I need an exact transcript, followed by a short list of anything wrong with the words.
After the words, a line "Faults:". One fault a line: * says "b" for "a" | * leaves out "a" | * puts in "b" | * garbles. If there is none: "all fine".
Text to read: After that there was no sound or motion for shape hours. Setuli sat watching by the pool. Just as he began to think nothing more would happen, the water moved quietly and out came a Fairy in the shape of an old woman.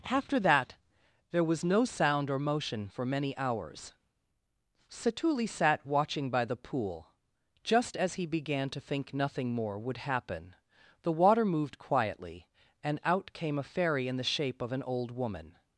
After that there was no sound or motion for many hours. Setuli sat watching by the pool. Just as he began to think nothing more would happen, the water moved quietly and out came a Fairy in the shape of an old woman.
Faults:
* says "many" for "shape"